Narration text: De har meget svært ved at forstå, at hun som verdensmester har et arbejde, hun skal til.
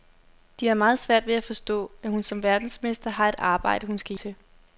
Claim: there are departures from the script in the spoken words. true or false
false